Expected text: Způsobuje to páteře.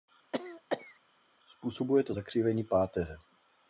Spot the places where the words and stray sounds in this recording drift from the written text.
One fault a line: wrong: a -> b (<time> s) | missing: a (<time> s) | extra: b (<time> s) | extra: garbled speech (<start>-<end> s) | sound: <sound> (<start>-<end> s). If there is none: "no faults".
sound: cough (0.3-1.0 s)
extra: zakřivení (2.1 s)